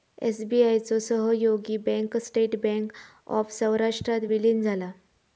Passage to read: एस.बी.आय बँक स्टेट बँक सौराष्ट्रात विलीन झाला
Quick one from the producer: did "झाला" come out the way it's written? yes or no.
yes